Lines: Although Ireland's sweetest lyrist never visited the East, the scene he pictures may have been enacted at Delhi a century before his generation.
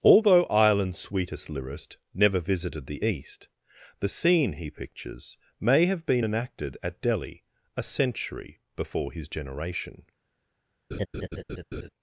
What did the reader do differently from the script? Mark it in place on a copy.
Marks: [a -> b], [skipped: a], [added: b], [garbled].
Although Ireland's sweetest lyrist never visited the East, the scene he pictures may have been enacted at Delhi a century before his generation.